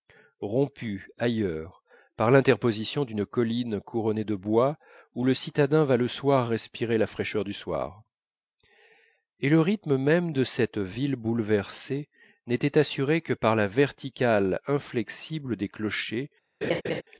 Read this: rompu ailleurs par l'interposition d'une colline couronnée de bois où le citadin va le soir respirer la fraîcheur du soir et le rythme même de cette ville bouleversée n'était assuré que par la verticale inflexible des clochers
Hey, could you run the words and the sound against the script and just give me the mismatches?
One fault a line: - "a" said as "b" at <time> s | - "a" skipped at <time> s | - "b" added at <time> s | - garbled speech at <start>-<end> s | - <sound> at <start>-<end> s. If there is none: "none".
- laugh at 16.6-17.0 s